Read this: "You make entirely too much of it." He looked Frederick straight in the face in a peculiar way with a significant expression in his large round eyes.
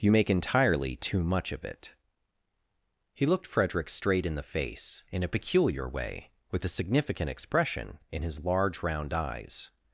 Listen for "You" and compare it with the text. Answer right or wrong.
right